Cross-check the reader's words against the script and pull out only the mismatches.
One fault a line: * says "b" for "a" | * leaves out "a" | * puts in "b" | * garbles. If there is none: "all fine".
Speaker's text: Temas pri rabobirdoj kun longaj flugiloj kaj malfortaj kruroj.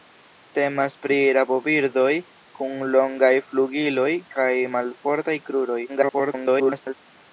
* garbles